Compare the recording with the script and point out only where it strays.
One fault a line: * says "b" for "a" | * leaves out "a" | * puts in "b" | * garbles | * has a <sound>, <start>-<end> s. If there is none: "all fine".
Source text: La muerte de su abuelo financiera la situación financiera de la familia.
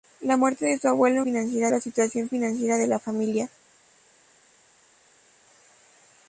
all fine